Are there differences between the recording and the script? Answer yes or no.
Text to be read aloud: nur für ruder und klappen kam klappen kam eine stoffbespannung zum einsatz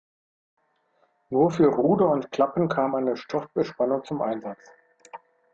yes